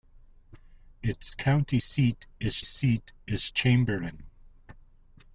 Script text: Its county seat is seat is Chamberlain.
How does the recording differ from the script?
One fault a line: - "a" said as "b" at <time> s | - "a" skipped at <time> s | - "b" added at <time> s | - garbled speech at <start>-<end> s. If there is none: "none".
none